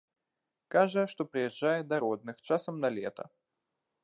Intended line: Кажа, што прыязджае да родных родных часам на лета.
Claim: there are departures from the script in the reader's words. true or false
true